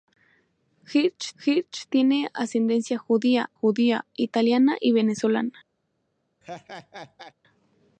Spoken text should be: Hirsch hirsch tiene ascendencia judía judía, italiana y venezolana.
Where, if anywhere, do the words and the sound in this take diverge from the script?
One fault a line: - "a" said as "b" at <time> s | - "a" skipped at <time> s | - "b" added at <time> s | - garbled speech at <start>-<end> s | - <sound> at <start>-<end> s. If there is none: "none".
- laugh at 6.4-7.3 s